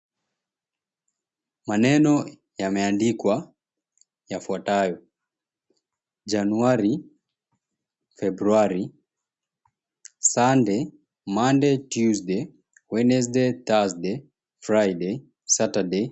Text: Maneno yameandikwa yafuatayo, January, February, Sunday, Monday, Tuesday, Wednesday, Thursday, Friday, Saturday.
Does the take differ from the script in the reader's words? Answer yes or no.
no